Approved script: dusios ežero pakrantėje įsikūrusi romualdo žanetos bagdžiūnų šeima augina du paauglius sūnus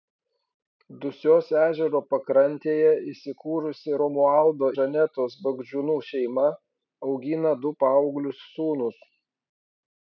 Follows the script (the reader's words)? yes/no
yes